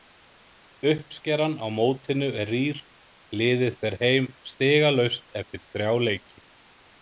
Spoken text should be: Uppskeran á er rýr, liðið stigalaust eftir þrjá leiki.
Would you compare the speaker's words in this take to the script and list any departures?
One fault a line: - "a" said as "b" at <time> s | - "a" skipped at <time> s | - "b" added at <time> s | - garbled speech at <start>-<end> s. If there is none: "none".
- "mótinu" added at 1.8 s
- "fer heim" added at 3.8 s